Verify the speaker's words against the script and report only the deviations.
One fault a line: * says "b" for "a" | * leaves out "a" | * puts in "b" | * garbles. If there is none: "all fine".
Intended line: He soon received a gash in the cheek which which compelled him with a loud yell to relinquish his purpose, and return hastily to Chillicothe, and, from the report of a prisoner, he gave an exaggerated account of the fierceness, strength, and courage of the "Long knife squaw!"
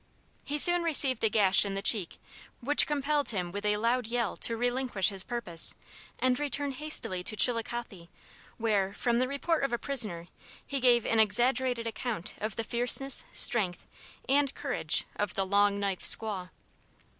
* leaves out "which"
* says "where" for "and"